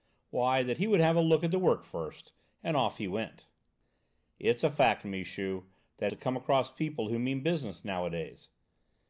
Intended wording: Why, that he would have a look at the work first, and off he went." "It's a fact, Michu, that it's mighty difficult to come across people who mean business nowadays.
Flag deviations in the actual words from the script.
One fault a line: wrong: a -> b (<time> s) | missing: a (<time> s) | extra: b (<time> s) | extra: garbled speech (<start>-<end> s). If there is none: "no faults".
missing: it's mighty difficult (6.1 s)